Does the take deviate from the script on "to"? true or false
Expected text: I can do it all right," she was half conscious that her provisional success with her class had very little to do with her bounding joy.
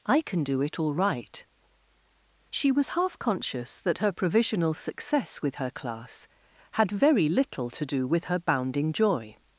false